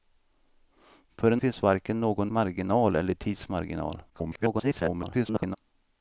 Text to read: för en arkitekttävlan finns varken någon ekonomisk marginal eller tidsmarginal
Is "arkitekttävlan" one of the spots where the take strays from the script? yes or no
yes